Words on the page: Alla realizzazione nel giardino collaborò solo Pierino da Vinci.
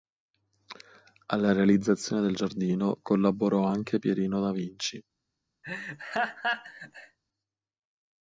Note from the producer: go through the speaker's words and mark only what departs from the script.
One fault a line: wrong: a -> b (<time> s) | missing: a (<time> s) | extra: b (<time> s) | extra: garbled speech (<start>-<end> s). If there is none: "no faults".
wrong: nel -> del (2.2 s)
wrong: solo -> anche (3.6 s)